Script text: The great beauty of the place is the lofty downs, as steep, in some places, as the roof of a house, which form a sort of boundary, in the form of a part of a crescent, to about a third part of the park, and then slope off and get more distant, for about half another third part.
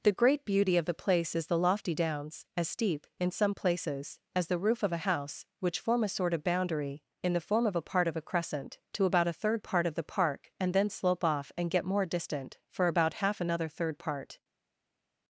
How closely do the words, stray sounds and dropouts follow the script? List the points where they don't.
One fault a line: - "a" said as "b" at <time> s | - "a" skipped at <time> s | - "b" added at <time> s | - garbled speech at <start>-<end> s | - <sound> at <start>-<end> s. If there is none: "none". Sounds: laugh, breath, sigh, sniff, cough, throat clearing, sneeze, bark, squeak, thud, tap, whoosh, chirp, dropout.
none